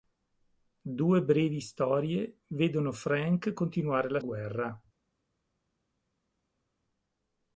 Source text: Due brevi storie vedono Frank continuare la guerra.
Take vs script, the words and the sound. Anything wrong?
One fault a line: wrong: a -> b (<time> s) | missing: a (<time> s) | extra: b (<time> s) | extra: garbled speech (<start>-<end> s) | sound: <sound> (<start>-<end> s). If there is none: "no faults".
no faults